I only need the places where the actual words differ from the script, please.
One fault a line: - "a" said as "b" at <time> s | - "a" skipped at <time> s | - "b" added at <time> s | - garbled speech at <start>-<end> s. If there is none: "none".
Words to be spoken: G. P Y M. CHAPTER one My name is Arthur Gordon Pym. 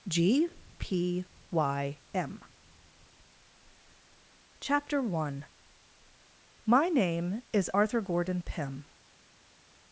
none